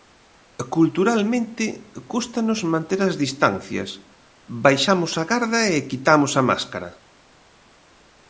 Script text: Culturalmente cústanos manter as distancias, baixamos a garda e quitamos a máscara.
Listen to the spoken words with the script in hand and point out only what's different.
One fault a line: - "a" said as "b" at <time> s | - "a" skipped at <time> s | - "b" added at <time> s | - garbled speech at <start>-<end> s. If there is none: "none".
none